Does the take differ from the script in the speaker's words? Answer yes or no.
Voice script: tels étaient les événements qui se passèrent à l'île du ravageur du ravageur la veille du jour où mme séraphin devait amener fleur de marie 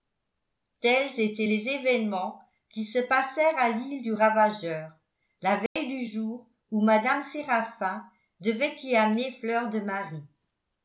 yes